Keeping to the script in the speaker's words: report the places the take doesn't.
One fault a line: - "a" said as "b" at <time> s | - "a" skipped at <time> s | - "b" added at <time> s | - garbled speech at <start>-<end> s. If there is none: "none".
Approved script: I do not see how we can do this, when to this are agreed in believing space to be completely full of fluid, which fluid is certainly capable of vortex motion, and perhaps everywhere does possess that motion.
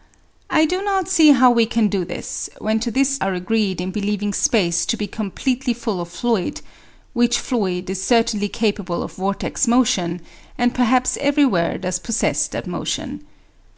none